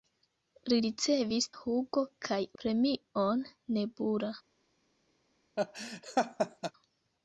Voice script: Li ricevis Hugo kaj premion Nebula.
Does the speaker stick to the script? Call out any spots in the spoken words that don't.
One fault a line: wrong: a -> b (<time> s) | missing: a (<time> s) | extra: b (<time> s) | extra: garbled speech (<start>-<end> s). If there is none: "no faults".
no faults